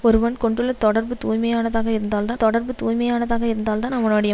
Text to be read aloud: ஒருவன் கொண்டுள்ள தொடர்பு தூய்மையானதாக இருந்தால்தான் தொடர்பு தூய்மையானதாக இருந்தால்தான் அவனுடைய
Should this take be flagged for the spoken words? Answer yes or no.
no